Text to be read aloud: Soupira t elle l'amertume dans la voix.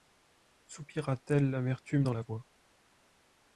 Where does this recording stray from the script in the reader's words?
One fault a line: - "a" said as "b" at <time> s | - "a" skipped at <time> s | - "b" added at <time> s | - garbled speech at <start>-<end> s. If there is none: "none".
none